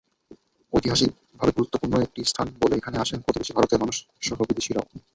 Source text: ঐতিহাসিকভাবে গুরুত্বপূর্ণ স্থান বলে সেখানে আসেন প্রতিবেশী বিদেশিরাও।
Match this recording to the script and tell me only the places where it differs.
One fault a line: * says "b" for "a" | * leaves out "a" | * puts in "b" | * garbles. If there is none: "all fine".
* puts in "একটি"
* says "এখানে" for "সেখানে"
* puts in "ভারতের মানুষসহ"